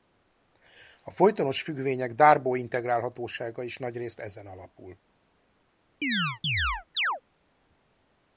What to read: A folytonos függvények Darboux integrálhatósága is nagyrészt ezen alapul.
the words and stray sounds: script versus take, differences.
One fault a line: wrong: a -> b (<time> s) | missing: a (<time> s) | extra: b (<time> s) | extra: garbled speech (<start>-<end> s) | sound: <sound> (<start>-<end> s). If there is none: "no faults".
sound: chirp (6.0-7.2 s)